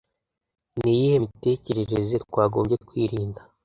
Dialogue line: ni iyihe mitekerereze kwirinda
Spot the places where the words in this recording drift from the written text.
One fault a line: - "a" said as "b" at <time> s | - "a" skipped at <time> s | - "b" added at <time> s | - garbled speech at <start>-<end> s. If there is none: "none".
- "twagombye" added at 2.2 s